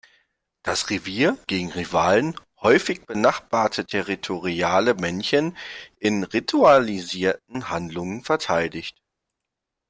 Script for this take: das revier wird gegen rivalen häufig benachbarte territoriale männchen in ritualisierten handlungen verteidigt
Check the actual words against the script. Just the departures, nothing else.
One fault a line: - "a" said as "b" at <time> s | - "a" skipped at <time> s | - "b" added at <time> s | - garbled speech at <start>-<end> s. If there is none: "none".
- "wird" skipped at 1.4 s